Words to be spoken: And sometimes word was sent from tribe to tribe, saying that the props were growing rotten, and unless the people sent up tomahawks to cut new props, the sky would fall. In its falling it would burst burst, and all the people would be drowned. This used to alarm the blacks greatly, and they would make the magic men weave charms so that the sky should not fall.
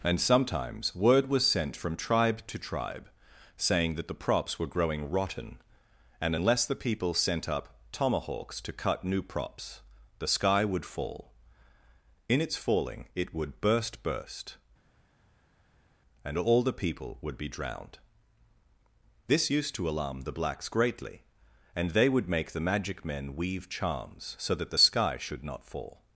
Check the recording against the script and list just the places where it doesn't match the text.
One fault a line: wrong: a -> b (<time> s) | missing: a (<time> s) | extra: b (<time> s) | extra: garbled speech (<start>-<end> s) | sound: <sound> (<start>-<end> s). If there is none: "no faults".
no faults